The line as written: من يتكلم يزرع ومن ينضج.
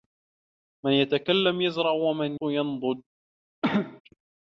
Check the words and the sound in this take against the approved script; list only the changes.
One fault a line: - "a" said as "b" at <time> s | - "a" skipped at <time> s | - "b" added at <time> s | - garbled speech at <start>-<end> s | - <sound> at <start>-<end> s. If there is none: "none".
- cough at 3.6-4.0 s